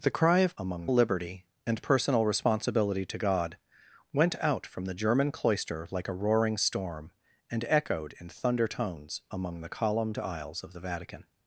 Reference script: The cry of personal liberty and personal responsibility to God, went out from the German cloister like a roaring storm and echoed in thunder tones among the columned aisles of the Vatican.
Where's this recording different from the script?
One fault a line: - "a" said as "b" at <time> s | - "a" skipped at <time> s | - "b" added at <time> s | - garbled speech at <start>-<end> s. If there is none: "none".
- "personal" said as "among" at 0.6 s